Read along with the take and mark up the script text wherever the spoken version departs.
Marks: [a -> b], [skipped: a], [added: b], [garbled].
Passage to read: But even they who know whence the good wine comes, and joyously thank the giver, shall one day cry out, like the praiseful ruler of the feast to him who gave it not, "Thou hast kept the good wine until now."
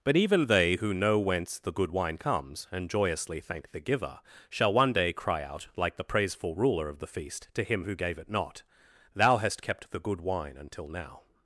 But even they who know whence the good wine comes, and joyously thank the giver, shall one day cry out, like the praiseful ruler of the feast to him who gave it not, "Thou hast kept the good wine until now."